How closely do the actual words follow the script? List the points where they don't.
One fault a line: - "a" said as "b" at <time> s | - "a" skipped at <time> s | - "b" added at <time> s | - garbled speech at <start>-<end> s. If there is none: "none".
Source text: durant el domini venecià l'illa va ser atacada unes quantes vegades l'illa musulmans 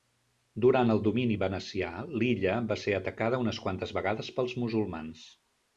- "l'illa" said as "pels" at 4.4 s